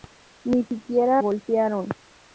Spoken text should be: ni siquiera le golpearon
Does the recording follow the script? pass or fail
fail